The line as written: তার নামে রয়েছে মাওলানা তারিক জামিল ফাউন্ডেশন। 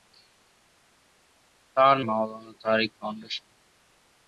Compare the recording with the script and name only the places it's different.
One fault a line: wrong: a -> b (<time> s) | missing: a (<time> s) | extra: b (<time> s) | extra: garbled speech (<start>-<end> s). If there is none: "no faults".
missing: নামে রয়েছে (1.9 s)
missing: জামিল (2.9 s)